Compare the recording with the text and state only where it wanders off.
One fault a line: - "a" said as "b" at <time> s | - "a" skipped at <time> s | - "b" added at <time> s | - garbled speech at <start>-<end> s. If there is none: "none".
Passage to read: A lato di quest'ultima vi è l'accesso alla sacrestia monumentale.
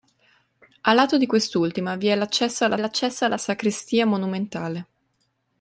- "l'accesso alla" added at 2.8 s